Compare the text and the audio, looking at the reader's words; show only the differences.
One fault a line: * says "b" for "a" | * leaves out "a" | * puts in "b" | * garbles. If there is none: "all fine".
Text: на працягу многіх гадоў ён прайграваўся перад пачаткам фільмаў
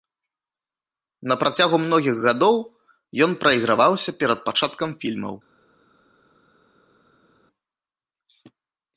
all fine